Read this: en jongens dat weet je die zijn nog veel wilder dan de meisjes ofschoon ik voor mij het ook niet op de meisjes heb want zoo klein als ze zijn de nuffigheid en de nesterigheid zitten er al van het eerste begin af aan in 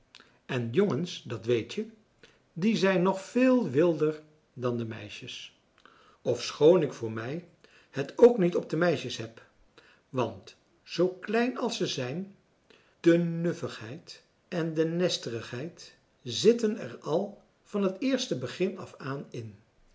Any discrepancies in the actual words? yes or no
no